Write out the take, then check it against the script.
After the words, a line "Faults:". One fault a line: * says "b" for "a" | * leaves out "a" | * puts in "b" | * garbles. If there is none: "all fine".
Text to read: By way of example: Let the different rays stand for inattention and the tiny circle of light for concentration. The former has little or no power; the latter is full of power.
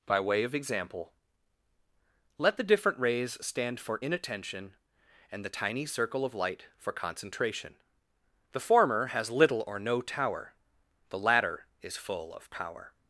By way of example: Let the different rays stand for inattention and the tiny circle of light for concentration. The former has little or no tower; the latter is full of power.
Faults:
* says "tower" for "power"